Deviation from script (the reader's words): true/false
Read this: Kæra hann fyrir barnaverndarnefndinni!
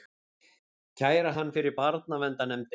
false